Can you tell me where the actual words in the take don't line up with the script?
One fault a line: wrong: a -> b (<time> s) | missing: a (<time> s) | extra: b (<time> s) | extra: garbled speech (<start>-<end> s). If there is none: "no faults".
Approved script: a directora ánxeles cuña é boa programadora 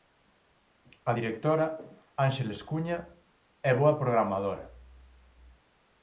no faults